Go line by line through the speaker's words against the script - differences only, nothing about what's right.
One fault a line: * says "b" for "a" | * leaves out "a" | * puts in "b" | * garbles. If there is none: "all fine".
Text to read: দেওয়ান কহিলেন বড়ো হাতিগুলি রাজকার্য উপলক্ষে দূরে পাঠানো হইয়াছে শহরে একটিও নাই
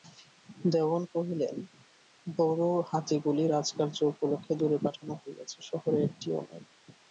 all fine